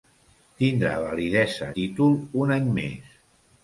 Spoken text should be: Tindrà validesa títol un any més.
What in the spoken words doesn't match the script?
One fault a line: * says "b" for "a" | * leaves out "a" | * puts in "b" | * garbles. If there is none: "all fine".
all fine